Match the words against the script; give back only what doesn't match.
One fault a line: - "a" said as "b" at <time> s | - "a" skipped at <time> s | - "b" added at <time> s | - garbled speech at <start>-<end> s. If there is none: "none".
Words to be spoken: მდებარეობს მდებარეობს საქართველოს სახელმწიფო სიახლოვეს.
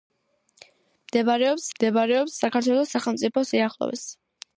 none